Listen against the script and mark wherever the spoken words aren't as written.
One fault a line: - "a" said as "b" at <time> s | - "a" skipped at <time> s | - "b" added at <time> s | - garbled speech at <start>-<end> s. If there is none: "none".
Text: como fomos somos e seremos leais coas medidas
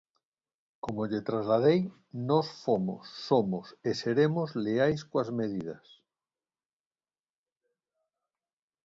- "lle trasladei nós" added at 1.1 s